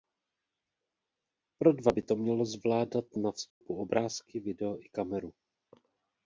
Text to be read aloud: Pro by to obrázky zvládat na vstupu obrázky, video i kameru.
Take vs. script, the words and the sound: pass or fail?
fail